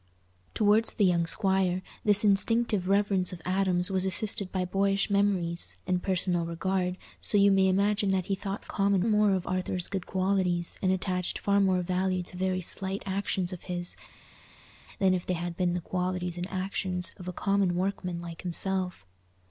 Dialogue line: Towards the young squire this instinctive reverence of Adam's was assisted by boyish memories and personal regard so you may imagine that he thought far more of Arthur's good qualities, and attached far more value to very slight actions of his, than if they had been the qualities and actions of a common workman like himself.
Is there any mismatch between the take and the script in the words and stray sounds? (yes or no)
yes